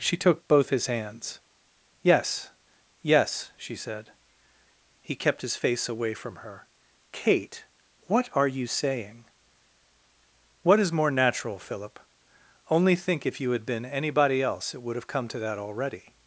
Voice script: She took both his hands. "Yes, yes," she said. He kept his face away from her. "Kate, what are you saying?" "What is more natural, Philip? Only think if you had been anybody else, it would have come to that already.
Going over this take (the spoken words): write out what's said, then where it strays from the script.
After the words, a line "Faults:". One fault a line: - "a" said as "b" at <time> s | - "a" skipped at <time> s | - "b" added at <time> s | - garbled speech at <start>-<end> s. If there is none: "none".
She took both his hands. "Yes, yes," she said. He kept his face away from her. "Kate, what are you saying?" "What is more natural, Philip? Only think if you had been anybody else, it would have come to that already.
Faults:
none